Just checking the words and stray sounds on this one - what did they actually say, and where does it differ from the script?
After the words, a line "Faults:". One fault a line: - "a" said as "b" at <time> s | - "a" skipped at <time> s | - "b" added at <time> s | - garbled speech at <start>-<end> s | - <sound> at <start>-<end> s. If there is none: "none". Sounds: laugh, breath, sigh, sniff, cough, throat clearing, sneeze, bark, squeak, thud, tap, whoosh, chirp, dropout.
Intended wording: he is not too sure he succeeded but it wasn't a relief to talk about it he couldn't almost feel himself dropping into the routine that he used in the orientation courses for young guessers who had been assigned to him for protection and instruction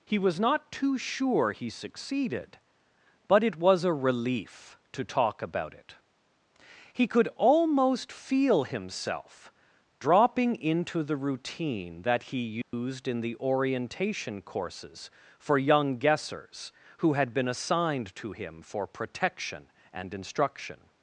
he was not too sure he succeeded but it was a relief to talk about it he could almost feel himself dropping into the routine that he used in the orientation courses for young guessers who had been assigned to him for protection and instruction
Faults:
- "is" said as "was" at 0.2 s
- "wasn't" said as "was" at 3.6 s
- "couldn't" said as "could" at 7.1 s
- dropout at 12.6-12.7 s